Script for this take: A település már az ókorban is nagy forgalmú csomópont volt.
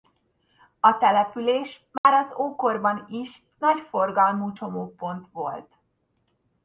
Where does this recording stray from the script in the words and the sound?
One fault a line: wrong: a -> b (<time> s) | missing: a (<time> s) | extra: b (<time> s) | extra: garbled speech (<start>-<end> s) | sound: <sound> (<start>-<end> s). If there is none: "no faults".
sound: dropout (2.0-2.0 s)